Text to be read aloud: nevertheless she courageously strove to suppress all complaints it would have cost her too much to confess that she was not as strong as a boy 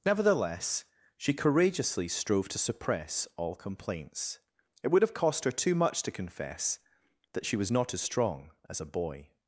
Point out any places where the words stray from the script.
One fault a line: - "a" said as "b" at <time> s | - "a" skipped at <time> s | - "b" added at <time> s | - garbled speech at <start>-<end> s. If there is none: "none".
none